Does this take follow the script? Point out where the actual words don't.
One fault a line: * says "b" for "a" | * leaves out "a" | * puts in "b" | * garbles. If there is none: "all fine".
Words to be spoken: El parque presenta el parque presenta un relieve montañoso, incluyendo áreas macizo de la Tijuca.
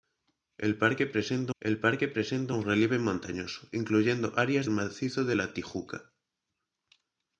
all fine